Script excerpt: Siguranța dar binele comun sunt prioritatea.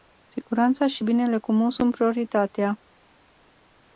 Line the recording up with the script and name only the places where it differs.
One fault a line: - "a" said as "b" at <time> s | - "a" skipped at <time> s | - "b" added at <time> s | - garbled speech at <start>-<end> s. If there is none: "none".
- "dar" said as "și" at 0.9 s